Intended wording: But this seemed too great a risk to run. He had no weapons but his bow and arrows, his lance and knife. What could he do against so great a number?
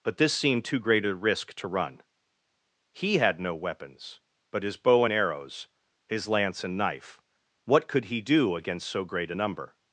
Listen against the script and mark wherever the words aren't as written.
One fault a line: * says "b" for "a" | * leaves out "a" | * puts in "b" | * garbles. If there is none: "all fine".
all fine